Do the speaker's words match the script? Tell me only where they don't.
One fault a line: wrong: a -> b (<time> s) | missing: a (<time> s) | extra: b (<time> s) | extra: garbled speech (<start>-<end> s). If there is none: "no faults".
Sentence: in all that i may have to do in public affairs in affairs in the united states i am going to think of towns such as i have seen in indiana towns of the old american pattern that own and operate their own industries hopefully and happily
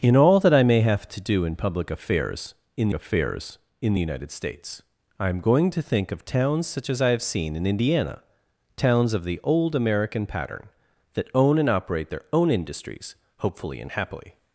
no faults